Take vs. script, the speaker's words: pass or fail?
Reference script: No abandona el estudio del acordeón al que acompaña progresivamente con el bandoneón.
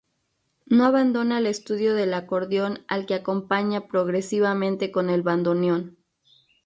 pass